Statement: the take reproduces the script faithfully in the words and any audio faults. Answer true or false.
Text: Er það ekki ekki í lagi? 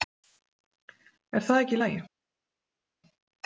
false